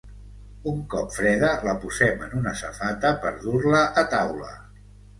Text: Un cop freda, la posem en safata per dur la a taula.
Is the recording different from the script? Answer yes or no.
yes